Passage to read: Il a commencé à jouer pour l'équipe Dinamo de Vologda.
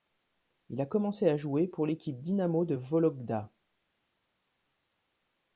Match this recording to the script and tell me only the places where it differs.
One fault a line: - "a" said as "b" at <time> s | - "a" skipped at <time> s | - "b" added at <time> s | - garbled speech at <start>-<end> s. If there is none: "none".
none